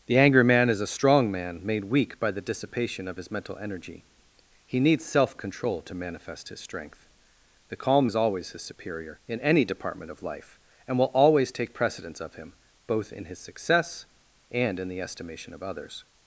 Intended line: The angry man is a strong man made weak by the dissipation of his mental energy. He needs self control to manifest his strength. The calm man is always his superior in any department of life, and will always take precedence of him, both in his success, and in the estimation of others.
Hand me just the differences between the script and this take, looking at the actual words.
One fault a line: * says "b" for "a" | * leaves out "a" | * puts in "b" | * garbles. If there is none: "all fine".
* leaves out "man"